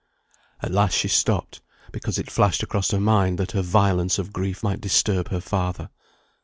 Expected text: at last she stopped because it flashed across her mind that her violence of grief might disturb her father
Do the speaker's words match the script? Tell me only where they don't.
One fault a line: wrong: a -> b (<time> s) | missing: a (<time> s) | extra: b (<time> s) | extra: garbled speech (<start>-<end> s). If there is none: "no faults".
no faults